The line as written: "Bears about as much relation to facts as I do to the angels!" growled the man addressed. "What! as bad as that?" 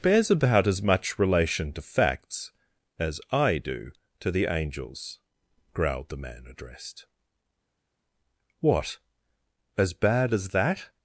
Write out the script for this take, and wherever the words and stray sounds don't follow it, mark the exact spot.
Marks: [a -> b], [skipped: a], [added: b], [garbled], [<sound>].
"Bears about as much relation to facts as I do to the angels!" growled the man addressed. "What! as bad as that?"